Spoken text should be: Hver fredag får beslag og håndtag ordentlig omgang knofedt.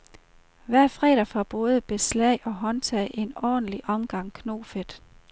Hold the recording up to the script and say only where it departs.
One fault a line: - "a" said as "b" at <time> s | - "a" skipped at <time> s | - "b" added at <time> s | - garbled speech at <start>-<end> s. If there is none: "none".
- "både" added at 1.4 s
- "en" added at 3.1 s